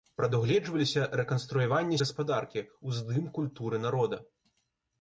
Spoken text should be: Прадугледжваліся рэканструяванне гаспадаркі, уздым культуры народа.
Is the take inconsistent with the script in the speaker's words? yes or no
no